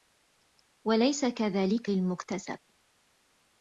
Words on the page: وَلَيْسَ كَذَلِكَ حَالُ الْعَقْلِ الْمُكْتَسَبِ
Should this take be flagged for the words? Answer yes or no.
yes